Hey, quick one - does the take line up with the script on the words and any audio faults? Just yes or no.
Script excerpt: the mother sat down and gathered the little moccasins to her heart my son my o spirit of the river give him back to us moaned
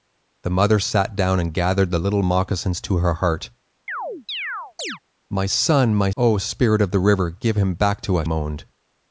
no